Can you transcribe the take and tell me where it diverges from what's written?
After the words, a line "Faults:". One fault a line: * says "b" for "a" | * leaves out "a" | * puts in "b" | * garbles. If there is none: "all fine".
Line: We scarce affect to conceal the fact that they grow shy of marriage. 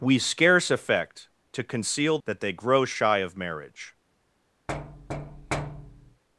We scarce affect to conceal that they grow shy of marriage.
Faults:
* leaves out "the fact"